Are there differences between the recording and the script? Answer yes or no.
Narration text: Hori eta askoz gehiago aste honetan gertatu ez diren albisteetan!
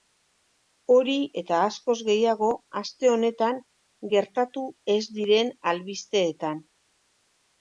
no